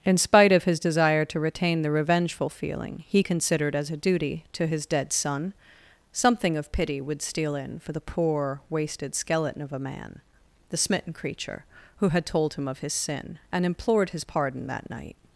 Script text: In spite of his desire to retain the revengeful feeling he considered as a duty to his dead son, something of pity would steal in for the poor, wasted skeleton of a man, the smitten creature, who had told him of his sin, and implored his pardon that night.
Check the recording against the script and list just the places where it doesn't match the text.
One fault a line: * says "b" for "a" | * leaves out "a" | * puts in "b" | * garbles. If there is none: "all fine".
all fine